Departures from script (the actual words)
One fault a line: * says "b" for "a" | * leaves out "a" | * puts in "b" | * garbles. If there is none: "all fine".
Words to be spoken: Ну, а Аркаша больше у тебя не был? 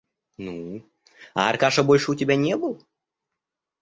all fine